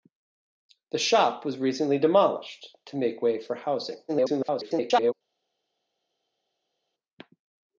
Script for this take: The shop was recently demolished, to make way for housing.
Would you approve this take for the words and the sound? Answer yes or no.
no